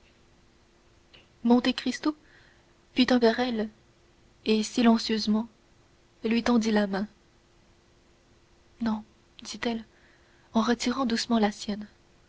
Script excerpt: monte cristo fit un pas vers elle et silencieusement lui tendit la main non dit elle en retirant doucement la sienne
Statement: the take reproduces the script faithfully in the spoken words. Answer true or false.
false